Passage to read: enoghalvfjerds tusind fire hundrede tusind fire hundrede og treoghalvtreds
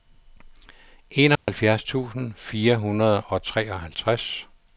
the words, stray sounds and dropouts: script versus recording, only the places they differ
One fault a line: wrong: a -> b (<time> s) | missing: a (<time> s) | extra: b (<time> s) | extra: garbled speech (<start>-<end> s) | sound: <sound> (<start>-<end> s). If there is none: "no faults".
sound: dropout (1.4-1.5 s)
missing: tusind fire hundrede (3.2 s)